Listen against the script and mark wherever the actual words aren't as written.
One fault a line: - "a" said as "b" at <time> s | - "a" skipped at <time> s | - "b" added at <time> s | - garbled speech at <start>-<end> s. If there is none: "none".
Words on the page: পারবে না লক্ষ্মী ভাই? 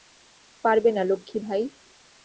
none